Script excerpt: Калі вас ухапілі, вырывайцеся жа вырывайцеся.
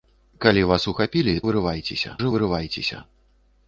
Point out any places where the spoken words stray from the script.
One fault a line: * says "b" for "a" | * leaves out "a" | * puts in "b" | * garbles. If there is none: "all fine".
all fine